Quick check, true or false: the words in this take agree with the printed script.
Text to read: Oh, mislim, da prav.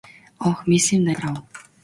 true